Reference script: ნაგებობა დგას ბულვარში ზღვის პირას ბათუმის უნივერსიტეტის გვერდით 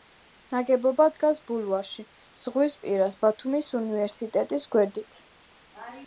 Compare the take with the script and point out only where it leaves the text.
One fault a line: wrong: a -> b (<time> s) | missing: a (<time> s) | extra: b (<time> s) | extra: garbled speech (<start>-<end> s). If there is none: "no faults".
no faults